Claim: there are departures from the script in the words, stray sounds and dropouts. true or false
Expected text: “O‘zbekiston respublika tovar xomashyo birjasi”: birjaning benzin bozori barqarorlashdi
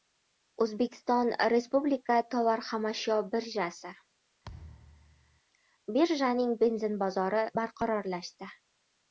true